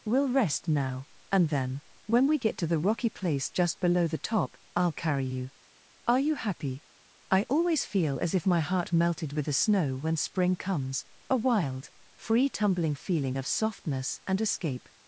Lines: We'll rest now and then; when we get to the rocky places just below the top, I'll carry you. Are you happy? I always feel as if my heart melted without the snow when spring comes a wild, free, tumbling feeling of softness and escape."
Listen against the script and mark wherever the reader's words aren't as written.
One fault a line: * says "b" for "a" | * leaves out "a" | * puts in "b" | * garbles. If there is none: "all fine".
* says "place" for "places"
* says "with" for "without"